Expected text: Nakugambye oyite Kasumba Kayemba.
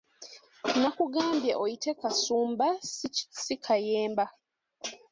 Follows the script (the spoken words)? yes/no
no